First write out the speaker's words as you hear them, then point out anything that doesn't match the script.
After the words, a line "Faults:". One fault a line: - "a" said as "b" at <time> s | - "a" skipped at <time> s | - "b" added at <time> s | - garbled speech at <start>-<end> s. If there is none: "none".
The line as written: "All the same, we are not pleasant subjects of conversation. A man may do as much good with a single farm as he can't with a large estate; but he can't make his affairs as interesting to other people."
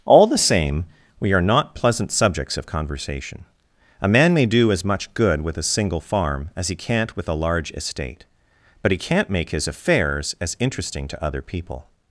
"All the same, we are not pleasant subjects of conversation. A man may do as much good with a single farm as he can't with a large estate; but he can't make his affairs as interesting to other people."
Faults:
none